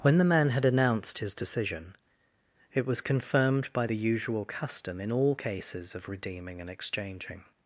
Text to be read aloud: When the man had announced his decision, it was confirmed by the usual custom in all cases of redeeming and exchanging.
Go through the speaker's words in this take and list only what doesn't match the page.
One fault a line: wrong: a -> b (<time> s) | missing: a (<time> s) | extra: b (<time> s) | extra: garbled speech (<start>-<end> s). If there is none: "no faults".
no faults